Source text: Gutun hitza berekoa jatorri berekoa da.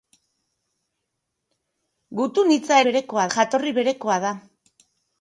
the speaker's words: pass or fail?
pass